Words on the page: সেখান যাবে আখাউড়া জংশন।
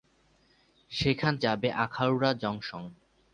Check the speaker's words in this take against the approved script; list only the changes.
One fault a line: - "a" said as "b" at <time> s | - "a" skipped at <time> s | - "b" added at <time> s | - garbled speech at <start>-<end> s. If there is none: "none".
none